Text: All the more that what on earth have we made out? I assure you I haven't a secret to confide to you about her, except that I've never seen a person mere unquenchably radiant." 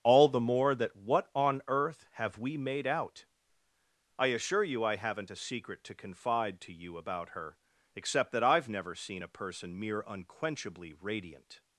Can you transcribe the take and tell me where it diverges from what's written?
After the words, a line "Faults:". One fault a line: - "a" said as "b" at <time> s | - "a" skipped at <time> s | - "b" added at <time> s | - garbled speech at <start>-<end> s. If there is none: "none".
All the more that what on earth have we made out? I assure you I haven't a secret to confide to you about her, except that I've never seen a person mere unquenchably radiant."
Faults:
none